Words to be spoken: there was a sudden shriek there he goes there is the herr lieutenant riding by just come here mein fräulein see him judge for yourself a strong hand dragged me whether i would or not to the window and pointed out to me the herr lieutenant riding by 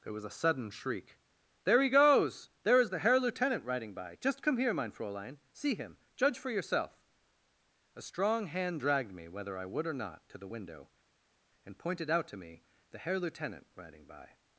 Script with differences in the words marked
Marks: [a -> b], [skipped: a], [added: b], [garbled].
there was a sudden shriek there he goes there is the herr lieutenant riding by just come here mein fräulein see him judge for yourself a strong hand dragged me whether i would or not to the window and pointed out to me the herr lieutenant riding by